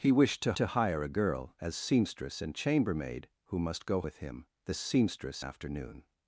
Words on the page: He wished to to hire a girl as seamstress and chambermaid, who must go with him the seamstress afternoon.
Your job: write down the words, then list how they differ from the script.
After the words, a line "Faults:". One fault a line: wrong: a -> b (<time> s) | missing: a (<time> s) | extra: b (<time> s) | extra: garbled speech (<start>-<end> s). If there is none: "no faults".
He wished to to hire a girl as seamstress and chambermaid, who must go with him the seamstress afternoon.
Faults:
no faults